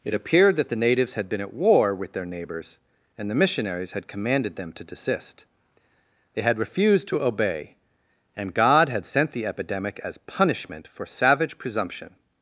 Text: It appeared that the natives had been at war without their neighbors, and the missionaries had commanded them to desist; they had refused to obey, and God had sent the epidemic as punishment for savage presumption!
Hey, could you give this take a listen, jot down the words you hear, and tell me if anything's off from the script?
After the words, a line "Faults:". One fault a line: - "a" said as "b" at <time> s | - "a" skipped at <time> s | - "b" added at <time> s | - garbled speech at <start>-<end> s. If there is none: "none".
It appeared that the natives had been at war with their neighbors, and the missionaries had commanded them to desist; they had refused to obey, and God had sent the epidemic as punishment for savage presumption!
Faults:
- "without" said as "with" at 1.9 s